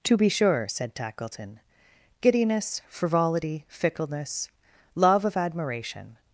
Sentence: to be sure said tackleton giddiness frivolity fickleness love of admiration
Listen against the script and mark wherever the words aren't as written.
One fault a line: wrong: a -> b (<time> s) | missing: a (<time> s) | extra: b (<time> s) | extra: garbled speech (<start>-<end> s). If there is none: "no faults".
no faults